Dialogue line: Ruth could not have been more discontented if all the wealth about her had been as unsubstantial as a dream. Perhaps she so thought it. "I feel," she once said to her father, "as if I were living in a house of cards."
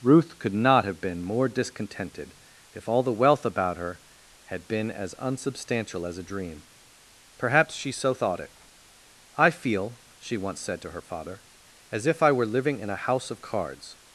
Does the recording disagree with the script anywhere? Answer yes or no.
no